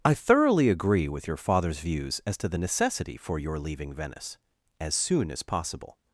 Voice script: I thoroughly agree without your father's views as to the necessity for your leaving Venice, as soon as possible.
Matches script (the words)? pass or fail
fail